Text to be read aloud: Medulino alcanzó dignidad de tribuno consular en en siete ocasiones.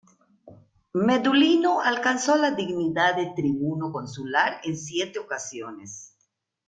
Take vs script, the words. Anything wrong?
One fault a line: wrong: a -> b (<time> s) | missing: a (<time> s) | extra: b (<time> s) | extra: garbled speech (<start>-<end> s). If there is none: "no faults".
extra: la (2.4 s)
missing: en (4.8 s)